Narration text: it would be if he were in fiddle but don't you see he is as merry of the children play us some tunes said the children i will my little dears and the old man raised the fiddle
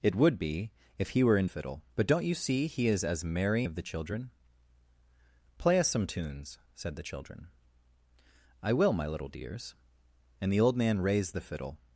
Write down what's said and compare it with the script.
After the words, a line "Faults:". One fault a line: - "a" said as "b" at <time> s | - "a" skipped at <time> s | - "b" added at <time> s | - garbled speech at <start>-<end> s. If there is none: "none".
it would be if he were in fiddle but don't you see he is as merry of the children play us some tunes said the children i will my little dears and the old man raised the fiddle
Faults:
none